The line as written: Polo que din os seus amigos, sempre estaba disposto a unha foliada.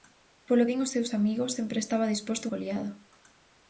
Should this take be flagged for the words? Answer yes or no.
yes